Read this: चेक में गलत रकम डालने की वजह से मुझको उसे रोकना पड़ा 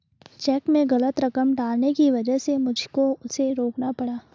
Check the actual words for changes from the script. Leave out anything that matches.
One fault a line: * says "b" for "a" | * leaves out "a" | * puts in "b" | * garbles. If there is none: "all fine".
all fine